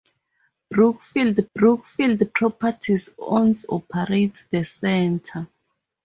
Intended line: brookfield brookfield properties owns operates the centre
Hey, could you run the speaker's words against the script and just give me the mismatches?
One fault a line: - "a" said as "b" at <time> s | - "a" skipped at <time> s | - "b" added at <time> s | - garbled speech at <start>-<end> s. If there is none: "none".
none